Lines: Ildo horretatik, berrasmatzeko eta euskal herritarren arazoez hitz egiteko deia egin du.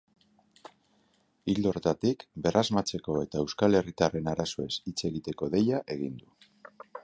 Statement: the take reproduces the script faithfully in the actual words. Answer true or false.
true